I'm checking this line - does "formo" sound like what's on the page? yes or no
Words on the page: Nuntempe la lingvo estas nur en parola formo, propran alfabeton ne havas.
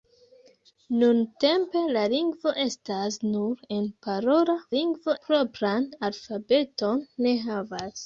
no